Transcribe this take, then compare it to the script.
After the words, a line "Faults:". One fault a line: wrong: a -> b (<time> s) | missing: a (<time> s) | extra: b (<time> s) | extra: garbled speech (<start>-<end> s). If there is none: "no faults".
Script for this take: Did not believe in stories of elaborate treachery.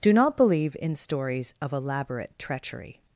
Do not believe in stories of elaborate treachery.
Faults:
wrong: Did -> Do (0.0 s)